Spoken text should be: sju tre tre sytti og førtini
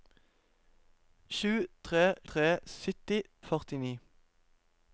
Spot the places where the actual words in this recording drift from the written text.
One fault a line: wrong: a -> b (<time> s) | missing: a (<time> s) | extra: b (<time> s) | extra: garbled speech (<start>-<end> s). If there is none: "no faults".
no faults